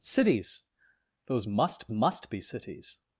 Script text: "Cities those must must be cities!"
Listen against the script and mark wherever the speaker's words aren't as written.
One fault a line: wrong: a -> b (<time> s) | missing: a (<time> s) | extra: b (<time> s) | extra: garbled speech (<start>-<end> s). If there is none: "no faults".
no faults